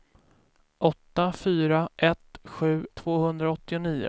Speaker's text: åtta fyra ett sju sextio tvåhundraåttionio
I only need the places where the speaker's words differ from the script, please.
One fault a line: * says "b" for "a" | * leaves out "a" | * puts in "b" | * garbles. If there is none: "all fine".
* leaves out "sextio"